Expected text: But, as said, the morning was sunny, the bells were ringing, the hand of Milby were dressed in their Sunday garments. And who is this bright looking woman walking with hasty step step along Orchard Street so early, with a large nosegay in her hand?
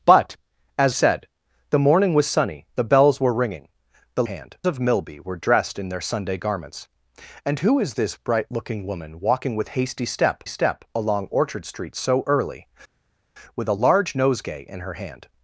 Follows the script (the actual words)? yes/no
yes